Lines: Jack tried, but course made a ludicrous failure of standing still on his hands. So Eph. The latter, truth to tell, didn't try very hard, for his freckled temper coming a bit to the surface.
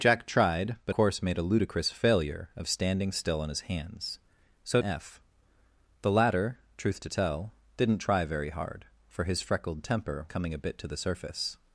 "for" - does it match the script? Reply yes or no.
yes